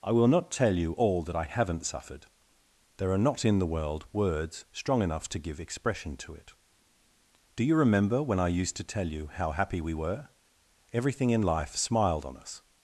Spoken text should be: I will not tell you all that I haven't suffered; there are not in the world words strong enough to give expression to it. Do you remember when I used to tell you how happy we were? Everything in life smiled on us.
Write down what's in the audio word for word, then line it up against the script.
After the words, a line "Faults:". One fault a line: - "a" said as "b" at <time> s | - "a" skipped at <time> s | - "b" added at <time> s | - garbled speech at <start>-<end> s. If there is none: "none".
I will not tell you all that I haven't suffered; there are not in the world words strong enough to give expression to it. Do you remember when I used to tell you how happy we were? Everything in life smiled on us.
Faults:
none